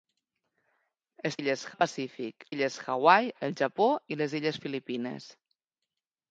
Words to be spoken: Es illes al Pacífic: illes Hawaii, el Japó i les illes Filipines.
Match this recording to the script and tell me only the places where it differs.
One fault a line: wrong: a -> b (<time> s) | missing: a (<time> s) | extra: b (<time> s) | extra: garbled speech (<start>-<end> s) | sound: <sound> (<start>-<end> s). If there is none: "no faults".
no faults